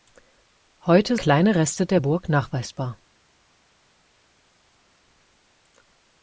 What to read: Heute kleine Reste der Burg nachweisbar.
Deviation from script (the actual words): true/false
false